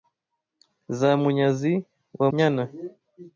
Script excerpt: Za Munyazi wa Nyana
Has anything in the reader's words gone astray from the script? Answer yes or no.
no